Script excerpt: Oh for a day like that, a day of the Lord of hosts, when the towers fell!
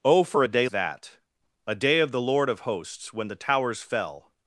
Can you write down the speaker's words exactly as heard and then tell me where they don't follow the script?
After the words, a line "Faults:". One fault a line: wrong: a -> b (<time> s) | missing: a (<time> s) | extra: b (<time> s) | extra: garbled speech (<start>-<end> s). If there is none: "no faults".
Oh for a day that, a day of the Lord of hosts, when the towers fell!
Faults:
missing: like (0.7 s)